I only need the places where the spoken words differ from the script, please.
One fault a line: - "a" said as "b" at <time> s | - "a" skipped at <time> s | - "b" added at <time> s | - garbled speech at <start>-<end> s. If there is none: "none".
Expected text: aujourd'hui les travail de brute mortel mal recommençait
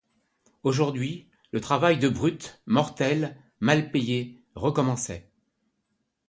- "les" said as "le" at 1.5 s
- "payé" added at 3.9 s